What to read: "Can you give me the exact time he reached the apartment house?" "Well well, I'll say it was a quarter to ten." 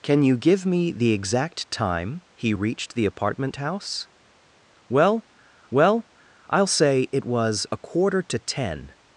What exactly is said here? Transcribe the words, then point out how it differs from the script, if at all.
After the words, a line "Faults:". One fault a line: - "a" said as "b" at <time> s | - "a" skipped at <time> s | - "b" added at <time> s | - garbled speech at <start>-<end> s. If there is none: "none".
"Can you give me the exact time he reached the apartment house?" "Well well, I'll say it was a quarter to ten."
Faults:
none